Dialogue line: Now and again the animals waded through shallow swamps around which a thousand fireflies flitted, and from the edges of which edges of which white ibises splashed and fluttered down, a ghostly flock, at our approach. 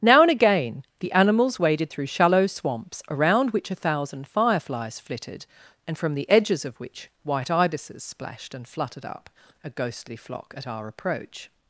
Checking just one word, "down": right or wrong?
wrong